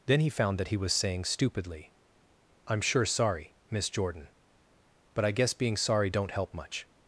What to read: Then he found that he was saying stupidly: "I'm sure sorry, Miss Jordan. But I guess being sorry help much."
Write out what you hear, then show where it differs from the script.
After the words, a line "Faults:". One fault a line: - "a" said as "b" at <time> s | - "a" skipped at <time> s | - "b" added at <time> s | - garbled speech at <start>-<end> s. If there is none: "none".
Then he found that he was saying stupidly: "I'm sure sorry, Miss Jordan. But I guess being sorry don't help much."
Faults:
- "don't" added at 6.1 s